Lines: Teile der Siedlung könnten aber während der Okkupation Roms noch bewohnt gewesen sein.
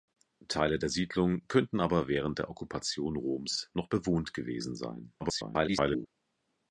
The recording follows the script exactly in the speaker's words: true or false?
false